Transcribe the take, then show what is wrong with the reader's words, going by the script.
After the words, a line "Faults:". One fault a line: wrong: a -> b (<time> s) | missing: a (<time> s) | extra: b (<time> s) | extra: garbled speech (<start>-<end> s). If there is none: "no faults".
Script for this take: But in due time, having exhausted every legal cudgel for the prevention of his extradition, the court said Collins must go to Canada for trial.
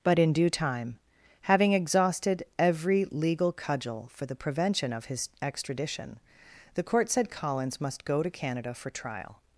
But in due time, having exhausted every legal cudgel for the prevention of his extradition, the court said Collins must go to Canada for trial.
Faults:
no faults